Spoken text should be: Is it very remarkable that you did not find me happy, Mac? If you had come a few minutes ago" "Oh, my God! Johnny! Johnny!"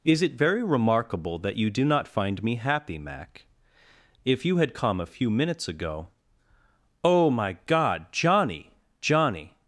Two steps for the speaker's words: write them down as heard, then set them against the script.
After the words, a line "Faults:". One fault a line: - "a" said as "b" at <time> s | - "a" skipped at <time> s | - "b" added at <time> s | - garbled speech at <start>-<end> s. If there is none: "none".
Is it very remarkable that you do not find me happy, Mac? If you had come a few minutes ago" "Oh, my God! Johnny! Johnny!"
Faults:
- "did" said as "do" at 1.7 s